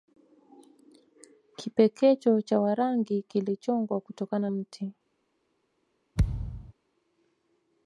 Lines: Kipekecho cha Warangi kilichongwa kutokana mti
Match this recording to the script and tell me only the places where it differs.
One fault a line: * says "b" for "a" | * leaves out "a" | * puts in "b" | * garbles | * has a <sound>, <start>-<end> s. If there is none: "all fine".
* has a thud, 6.2-6.7 s